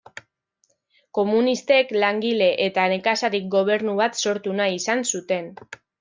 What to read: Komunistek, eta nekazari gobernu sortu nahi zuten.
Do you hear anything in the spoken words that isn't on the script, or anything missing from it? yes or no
yes